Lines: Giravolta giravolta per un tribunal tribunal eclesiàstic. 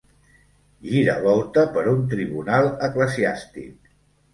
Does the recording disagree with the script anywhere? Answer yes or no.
yes